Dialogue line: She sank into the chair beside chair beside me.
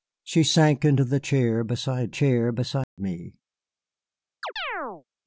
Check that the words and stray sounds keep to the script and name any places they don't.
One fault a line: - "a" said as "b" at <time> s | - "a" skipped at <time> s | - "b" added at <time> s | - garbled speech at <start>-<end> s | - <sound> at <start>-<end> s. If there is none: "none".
- dropout at 2.8-3.0 s
- chirp at 4.4-5.0 s